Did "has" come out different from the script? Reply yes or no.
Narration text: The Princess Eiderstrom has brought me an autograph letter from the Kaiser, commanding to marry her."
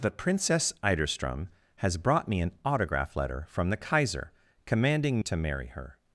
no